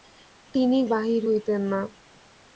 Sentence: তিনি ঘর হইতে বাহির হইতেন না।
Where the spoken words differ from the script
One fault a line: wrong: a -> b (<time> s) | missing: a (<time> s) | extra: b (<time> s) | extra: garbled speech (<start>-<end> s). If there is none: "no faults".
missing: ঘর হইতে (0.8 s)